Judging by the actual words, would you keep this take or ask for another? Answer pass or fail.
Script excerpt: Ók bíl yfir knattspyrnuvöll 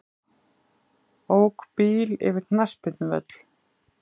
pass